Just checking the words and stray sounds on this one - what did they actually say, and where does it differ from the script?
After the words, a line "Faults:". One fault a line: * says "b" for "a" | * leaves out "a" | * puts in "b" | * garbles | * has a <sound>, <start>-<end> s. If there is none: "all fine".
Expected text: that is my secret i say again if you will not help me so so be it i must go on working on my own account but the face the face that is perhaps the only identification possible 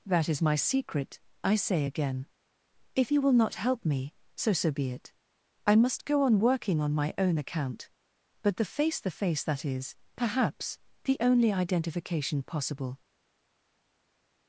that is my secret i say again if you will not help me so so be it i must go on working on my own account but the face the face that is perhaps the only identification possible
Faults:
all fine